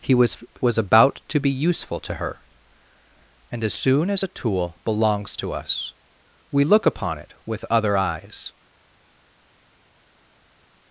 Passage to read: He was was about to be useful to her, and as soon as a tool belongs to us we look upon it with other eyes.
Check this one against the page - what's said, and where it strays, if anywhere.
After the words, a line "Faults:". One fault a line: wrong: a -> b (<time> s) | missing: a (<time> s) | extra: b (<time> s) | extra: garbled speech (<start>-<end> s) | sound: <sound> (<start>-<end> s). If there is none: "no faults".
He was was about to be useful to her, and as soon as a tool belongs to us we look upon it with other eyes.
Faults:
no faults